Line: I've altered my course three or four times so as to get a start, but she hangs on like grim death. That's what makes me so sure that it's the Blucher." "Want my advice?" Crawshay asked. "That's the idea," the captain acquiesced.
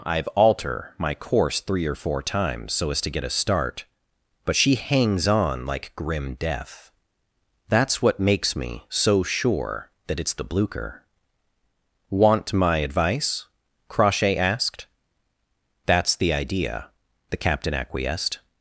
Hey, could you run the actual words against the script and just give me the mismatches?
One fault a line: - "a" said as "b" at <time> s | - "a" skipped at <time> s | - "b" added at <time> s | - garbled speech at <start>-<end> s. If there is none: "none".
- "altered" said as "alter" at 0.3 s